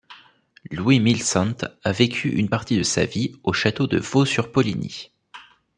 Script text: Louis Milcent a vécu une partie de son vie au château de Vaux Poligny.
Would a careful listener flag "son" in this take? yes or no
yes